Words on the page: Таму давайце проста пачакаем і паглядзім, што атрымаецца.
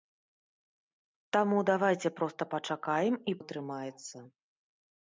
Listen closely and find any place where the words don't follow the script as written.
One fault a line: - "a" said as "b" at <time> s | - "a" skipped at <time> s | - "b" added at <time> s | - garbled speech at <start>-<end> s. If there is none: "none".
- "паглядзім што" skipped at 3.4 s